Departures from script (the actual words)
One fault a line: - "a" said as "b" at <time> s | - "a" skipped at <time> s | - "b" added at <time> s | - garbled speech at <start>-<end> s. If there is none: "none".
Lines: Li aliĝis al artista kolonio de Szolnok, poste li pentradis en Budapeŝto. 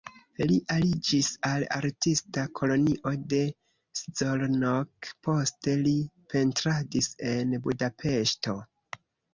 none